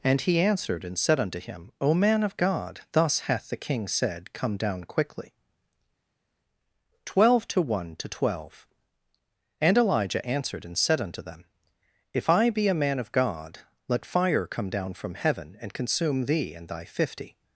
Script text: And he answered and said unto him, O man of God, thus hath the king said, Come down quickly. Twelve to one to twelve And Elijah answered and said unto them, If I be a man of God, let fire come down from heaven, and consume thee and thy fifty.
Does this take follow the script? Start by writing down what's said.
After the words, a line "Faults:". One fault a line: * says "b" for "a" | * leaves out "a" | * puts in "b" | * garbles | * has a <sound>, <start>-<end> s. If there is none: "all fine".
And he answered and said unto him, O man of God, thus hath the king said, Come down quickly. Twelve to one to twelve And Elijah answered and said unto them, If I be a man of God, let fire come down from heaven, and consume thee and thy fifty.
Faults:
all fine